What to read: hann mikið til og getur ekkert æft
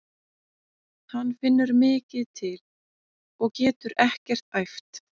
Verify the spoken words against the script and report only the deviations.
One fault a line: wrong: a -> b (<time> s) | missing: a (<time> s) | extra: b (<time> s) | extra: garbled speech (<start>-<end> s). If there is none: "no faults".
extra: finnur (1.4 s)